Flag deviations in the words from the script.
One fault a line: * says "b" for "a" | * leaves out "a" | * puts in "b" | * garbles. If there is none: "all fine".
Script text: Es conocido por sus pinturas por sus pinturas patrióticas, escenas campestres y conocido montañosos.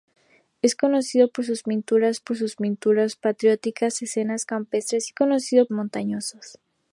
all fine